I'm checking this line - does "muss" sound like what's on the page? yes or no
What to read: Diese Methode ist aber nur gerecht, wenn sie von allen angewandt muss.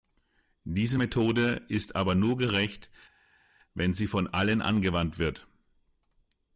no